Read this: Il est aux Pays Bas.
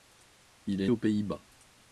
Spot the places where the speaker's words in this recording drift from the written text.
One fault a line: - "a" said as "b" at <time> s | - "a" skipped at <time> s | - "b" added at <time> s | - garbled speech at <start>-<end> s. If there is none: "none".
none